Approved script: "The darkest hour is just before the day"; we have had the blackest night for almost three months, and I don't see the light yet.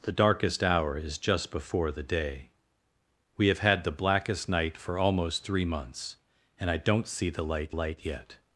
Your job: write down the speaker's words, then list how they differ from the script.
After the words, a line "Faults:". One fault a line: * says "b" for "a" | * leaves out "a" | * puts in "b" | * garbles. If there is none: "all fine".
"The darkest hour is just before the day"; we have had the blackest night for almost three months, and I don't see the light light yet.
Faults:
* puts in "light"